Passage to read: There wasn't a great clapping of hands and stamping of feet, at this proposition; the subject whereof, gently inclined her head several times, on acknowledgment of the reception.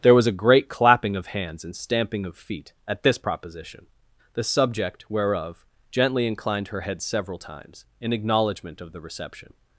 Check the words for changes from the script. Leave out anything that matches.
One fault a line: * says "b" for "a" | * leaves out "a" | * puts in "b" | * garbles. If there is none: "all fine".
* says "was" for "wasn't"
* says "in" for "on"